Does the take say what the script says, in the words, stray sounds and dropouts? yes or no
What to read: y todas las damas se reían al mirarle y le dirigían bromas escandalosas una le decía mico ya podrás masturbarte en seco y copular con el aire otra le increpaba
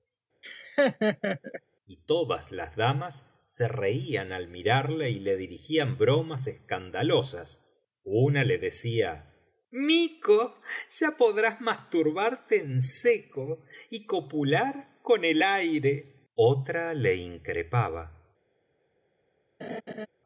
no